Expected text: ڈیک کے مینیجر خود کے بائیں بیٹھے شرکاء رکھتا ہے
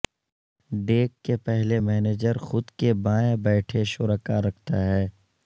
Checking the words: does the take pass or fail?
fail